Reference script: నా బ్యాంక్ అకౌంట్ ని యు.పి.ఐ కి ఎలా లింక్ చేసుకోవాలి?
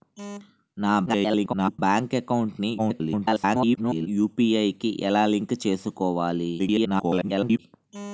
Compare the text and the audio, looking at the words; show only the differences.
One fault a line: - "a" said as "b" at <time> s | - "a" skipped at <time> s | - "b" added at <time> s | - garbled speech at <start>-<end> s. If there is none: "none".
- garbled speech at 1.1-1.8 s
- garbled speech at 2.8-4.1 s
- garbled speech at 6.6-7.6 s